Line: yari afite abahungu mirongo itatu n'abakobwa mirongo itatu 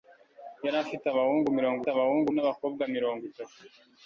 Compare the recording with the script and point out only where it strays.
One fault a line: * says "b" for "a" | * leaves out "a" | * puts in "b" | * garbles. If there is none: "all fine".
* says "abahungu" for "itatu"